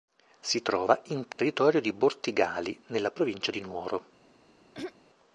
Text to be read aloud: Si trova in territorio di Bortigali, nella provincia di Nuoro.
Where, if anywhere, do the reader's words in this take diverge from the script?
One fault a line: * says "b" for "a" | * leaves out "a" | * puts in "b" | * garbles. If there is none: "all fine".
all fine